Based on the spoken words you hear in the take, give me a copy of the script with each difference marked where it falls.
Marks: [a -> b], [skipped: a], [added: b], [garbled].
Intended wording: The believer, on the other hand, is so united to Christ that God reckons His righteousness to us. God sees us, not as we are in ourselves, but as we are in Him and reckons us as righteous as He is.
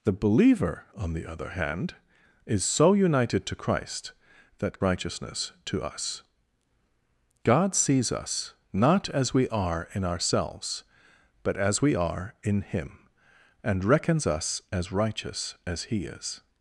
The believer, on the other hand, is so united to Christ that [skipped: God reckons His] righteousness to us. God sees us, not as we are in ourselves, but as we are in Him and reckons us as righteous as He is.